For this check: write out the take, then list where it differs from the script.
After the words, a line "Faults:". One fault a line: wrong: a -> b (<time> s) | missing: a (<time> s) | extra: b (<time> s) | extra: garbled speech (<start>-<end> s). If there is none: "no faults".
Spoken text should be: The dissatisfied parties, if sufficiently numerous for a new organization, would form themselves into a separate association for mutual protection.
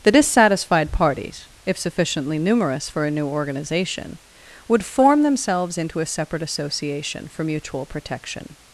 The dissatisfied parties, if sufficiently numerous for a new organization, would form themselves into a separate association for mutual protection.
Faults:
no faults